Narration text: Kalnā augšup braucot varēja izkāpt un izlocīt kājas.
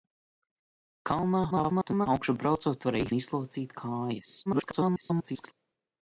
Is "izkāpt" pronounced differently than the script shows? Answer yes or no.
yes